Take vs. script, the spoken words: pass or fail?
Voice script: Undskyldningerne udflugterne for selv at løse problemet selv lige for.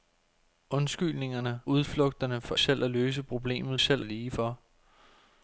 pass